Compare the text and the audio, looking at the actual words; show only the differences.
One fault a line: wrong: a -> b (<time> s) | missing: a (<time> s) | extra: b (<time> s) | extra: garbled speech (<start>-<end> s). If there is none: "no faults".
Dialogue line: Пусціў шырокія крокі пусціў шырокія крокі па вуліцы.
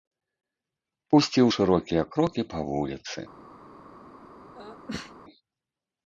missing: пусціў шырокія крокі (2.5 s)